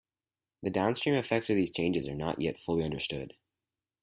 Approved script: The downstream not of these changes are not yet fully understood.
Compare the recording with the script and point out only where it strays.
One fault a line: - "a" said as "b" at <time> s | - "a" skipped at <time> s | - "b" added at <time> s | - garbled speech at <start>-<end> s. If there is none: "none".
- "not" said as "effects" at 1.1 s